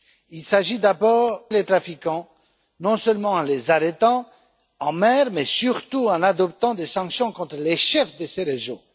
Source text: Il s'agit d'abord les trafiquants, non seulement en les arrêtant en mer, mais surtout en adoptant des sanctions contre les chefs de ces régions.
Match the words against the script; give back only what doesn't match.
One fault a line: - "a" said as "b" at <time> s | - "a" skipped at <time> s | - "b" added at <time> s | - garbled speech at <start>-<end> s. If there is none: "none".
none